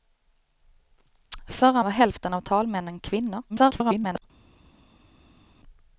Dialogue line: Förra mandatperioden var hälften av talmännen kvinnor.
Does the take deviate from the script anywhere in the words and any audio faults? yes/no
yes